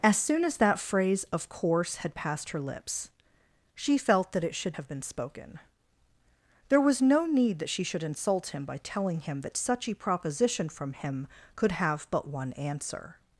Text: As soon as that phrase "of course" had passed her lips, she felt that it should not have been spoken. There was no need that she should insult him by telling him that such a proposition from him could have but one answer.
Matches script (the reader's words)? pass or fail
fail